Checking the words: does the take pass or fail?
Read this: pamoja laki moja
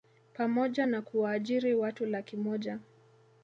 fail